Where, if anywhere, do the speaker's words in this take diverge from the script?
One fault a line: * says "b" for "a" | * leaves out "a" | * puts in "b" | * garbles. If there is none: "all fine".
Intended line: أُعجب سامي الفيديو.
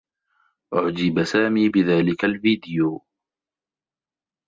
* puts in "بذلك"